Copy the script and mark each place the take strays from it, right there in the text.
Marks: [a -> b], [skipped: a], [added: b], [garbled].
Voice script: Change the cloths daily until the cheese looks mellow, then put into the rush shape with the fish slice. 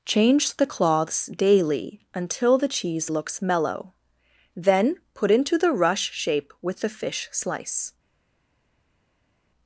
Change the cloths daily until the cheese looks mellow, then put into the rush shape with the fish slice.